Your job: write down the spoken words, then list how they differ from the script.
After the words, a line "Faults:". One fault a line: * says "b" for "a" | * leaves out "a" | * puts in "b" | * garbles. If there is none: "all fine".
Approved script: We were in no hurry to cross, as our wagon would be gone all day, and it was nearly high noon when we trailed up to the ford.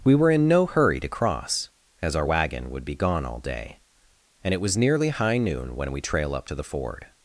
We were in no hurry to cross, as our wagon would be gone all day, and it was nearly high noon when we trail up to the ford.
Faults:
* says "trail" for "trailed"